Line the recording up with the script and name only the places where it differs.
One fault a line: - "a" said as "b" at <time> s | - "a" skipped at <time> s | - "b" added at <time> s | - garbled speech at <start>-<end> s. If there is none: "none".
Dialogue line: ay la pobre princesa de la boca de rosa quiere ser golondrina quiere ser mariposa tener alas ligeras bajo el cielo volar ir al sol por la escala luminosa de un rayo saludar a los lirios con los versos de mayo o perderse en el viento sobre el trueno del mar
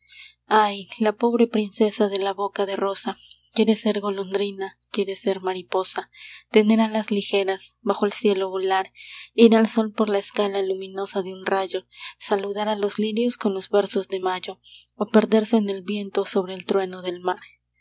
none